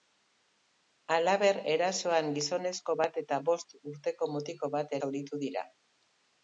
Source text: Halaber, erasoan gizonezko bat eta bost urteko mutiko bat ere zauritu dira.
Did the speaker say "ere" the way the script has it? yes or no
no